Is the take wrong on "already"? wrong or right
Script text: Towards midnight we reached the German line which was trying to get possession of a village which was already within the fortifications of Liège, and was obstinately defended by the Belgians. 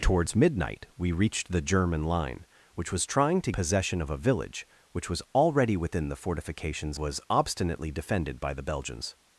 right